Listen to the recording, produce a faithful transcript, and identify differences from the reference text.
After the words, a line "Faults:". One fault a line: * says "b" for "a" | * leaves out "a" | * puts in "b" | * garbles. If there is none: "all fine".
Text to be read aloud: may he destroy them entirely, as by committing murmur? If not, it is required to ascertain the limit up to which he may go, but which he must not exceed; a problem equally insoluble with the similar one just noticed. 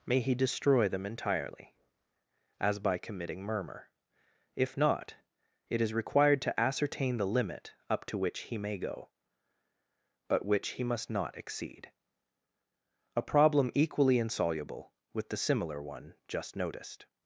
may he destroy them entirely, as by committing murmur? If not, it is required to ascertain the limit up to which he may go, but which he must not exceed; a problem equally insoluble with the similar one just noticed.
Faults:
all fine